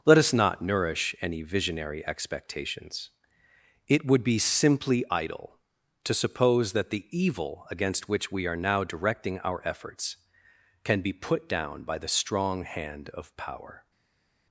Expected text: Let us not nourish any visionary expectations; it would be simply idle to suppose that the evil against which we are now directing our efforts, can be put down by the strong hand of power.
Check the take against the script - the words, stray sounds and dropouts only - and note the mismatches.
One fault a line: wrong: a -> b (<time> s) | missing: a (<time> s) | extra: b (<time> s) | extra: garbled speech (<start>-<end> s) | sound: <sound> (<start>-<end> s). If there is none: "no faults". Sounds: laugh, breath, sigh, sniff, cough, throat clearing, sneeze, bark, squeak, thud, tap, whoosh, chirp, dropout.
no faults